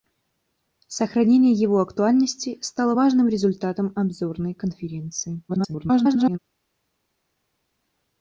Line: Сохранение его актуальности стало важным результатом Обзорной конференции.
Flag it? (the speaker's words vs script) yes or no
yes